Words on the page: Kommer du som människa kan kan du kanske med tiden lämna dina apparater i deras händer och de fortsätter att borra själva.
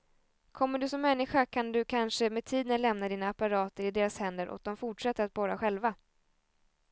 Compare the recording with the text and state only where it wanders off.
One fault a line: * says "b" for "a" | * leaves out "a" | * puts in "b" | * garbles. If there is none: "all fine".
* leaves out "kan"